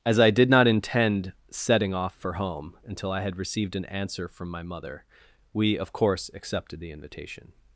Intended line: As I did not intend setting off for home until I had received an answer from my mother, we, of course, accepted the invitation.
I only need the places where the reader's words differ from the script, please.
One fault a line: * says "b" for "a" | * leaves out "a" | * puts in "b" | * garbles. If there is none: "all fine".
all fine